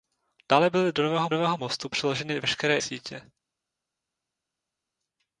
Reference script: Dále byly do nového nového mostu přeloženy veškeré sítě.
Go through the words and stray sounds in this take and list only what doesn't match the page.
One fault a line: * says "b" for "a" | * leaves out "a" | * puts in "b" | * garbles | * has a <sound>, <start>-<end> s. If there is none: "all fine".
all fine